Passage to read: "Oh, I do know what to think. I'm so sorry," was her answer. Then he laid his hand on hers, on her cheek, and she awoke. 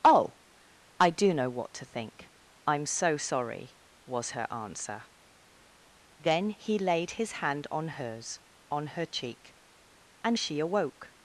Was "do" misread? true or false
false